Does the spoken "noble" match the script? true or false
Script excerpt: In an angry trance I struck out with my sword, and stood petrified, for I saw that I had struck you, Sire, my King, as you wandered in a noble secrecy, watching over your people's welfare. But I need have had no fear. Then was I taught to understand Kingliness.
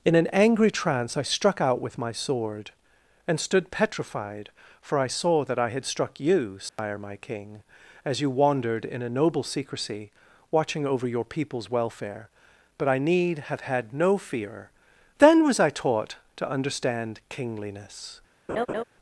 true